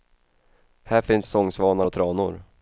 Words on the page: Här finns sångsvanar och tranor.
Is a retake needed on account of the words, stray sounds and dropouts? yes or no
no